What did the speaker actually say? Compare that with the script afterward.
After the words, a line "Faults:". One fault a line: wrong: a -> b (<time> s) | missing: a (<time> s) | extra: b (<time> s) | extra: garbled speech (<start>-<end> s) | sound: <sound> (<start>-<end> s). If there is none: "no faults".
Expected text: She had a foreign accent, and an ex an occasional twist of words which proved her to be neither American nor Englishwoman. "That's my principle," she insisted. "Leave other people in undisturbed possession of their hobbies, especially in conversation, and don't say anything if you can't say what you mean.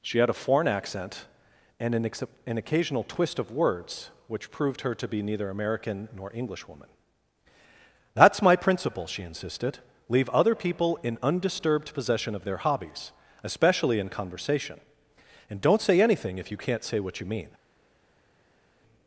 She had a foreign accent, and an ex an occasional twist of words which proved her to be neither American nor Englishwoman. "That's my principle," she insisted. "Leave other people in undisturbed possession of their hobbies, especially in conversation, and don't say anything if you can't say what you mean.
Faults:
no faults